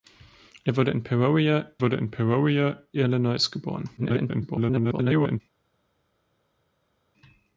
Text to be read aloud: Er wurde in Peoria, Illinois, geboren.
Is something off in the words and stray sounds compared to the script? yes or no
yes